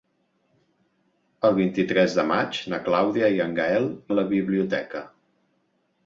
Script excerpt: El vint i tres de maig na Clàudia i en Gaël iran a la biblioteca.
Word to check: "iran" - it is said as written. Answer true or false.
false